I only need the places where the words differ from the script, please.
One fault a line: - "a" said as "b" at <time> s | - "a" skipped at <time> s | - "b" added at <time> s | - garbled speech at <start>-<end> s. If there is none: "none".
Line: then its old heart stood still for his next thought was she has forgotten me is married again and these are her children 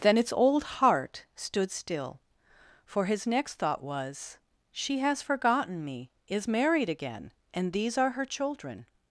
none